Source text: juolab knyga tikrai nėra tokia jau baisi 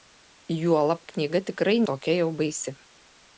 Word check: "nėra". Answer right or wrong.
wrong